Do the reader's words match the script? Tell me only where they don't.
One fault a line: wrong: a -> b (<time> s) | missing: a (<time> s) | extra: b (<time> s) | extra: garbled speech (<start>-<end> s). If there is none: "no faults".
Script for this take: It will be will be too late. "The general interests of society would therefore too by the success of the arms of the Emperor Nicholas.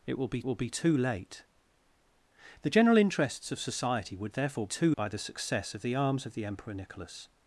no faults